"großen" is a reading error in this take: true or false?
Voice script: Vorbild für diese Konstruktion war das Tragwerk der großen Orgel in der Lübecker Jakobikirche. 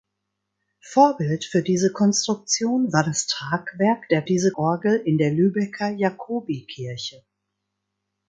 true